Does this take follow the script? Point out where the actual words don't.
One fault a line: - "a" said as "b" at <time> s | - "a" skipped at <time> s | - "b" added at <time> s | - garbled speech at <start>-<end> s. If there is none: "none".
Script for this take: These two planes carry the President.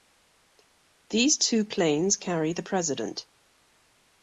none